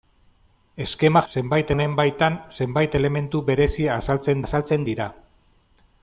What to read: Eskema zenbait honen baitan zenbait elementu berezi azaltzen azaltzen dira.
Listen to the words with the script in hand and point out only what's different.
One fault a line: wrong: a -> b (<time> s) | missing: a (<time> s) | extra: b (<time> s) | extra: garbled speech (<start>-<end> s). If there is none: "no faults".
no faults